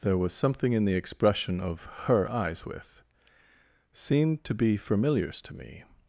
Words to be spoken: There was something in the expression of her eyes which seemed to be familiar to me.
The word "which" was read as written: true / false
false